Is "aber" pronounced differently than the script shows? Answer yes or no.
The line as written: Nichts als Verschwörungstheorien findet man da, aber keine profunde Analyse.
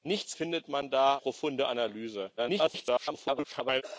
yes